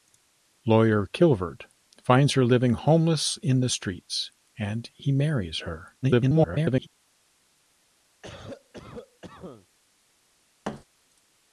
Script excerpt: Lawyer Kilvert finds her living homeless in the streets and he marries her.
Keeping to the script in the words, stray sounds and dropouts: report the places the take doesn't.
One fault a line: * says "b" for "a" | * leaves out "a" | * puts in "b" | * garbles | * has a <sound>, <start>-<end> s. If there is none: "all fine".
* garbles
* has a cough, 8.2-9.7 s
* has a thud, 10.6-10.8 s